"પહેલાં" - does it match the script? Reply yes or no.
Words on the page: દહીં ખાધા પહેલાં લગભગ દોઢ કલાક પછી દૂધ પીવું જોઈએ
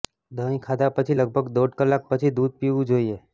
no